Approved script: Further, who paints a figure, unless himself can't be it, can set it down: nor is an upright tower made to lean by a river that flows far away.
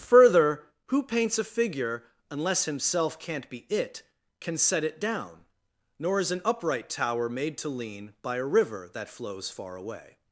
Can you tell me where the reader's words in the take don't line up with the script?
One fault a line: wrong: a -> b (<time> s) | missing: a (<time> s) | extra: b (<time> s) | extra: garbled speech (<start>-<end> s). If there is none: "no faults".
no faults